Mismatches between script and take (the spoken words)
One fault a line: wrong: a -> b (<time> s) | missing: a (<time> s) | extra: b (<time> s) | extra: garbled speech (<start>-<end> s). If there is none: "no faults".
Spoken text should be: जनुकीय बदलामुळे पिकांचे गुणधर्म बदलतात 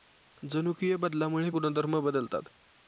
missing: पिकांचे (1.5 s)